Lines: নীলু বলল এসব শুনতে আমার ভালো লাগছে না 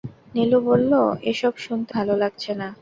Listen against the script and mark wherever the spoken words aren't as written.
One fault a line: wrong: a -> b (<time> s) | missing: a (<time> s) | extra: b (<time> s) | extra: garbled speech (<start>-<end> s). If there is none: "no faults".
missing: আমার (1.9 s)